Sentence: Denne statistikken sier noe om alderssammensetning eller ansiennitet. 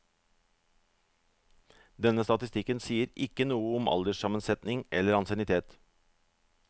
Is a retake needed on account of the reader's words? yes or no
yes